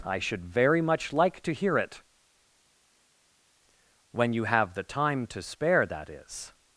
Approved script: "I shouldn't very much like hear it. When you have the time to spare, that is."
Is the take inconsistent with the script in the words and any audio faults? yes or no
yes